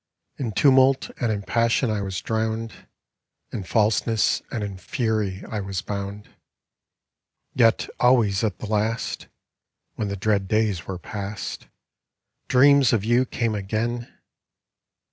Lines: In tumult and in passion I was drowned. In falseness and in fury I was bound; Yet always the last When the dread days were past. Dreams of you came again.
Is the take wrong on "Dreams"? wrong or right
right